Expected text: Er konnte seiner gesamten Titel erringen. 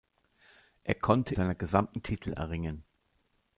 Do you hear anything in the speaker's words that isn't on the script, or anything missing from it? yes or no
no